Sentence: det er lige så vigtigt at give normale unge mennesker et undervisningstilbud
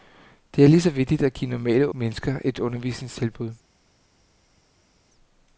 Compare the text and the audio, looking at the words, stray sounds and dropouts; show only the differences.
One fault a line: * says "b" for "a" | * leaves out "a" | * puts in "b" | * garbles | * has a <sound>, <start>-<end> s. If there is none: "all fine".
* leaves out "unge"